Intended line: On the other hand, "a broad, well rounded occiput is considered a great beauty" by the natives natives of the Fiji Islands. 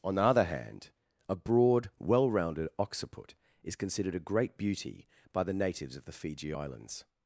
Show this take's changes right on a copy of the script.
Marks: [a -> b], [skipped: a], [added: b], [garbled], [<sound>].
On the other hand, "a broad, well rounded occiput is considered a great beauty" by the natives [skipped: natives] of the Fiji Islands.